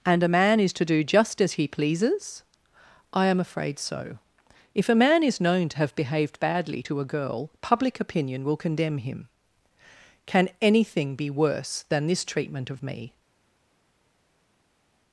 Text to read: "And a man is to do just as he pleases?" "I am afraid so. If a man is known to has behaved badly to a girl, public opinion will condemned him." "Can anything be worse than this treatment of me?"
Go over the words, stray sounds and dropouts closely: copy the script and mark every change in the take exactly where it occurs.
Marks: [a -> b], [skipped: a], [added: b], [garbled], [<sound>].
"And a man is to do just as he pleases?" "I am afraid so. If a man is known to [has -> have] behaved badly to a girl, public opinion will [condemned -> condemn] him." "Can anything be worse than this treatment of me?"